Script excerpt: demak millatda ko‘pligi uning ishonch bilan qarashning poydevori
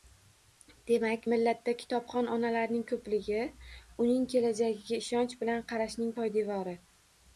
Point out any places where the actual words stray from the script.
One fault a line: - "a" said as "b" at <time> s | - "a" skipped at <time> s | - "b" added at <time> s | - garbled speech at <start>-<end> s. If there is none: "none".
- "kitobxon onalarning" added at 1.8 s
- "kelajagiga" added at 4.3 s